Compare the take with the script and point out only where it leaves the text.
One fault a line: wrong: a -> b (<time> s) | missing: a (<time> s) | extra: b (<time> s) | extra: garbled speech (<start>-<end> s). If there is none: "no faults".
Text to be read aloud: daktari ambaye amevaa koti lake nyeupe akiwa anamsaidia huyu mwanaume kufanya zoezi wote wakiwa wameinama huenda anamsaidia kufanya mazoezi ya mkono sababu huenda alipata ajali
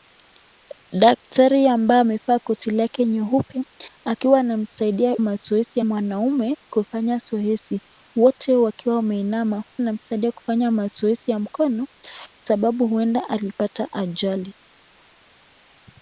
wrong: huyu -> mazoezi (5.2 s)
missing: huenda (9.6 s)